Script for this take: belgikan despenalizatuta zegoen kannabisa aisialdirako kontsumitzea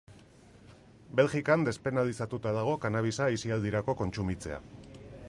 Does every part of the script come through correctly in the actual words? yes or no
no